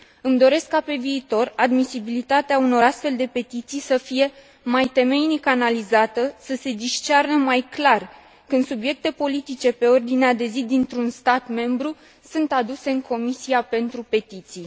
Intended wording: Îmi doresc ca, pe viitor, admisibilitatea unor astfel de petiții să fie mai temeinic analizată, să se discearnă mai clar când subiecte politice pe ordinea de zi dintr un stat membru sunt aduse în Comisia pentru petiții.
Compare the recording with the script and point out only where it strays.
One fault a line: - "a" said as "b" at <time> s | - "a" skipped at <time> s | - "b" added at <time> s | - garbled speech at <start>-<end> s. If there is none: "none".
none